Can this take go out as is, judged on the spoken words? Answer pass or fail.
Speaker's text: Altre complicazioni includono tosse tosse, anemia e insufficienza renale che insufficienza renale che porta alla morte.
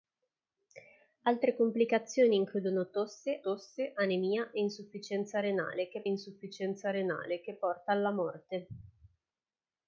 pass